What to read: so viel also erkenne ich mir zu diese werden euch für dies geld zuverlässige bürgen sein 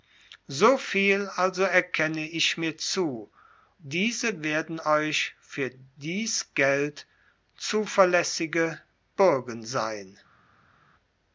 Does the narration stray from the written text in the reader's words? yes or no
no